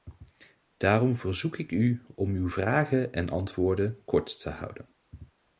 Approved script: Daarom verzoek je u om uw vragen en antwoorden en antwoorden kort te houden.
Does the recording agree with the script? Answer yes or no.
no